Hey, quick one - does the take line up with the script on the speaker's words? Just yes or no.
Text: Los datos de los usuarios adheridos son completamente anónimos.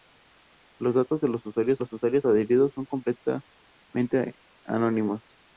no